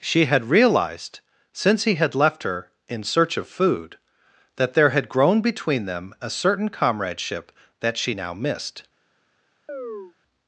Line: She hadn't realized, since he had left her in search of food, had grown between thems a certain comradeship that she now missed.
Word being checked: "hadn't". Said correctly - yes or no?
no